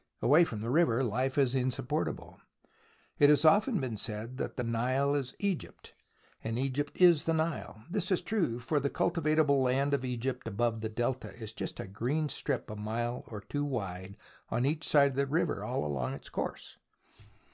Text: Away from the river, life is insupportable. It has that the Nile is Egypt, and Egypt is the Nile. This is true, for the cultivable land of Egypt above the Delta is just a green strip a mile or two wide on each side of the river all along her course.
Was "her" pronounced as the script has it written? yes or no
no